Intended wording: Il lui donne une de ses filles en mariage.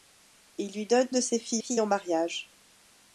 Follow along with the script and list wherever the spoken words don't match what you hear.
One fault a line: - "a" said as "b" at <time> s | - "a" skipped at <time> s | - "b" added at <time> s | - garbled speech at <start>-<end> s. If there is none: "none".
- "une" skipped at 1.1 s
- "filles" added at 1.6 s